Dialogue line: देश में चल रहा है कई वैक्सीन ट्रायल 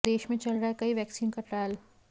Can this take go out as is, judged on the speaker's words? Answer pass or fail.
fail